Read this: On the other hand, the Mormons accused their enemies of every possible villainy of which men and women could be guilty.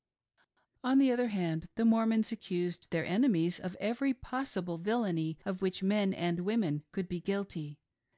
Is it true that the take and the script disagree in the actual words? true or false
false